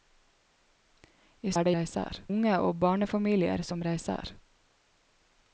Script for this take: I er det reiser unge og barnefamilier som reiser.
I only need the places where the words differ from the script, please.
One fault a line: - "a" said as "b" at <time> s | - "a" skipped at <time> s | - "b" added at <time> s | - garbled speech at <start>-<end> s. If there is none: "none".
none